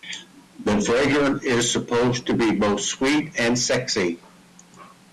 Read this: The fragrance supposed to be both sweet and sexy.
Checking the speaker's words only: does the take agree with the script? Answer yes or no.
no